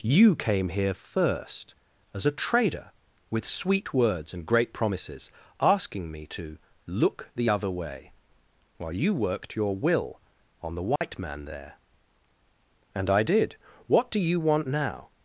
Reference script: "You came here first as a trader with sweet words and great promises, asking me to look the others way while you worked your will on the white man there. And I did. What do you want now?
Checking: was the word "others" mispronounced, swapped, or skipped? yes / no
yes